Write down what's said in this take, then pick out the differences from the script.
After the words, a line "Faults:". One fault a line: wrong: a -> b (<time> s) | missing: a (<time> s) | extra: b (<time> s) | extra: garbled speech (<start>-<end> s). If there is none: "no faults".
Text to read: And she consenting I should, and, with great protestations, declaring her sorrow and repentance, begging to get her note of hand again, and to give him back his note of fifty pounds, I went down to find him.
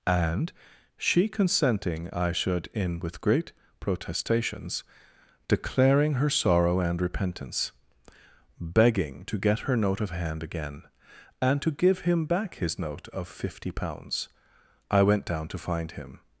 And she consenting I should, in, with great protestations, declaring her sorrow and repentance, begging to get her note of hand again, and to give him back his note of fifty pounds, I went down to find him.
Faults:
wrong: and -> in (2.7 s)